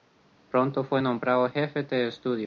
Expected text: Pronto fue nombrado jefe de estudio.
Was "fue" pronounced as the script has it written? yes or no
yes